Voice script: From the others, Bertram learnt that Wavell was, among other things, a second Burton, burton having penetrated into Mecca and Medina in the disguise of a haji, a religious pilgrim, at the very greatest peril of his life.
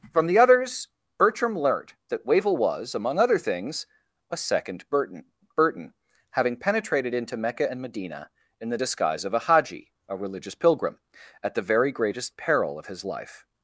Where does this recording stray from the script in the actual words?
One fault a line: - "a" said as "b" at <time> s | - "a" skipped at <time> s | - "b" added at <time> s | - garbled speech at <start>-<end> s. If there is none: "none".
none